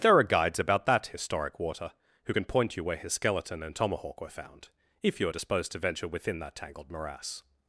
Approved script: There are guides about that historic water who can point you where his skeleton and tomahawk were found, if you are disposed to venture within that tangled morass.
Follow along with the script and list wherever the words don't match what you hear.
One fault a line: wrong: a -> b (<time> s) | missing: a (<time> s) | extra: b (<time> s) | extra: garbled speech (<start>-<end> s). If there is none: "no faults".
no faults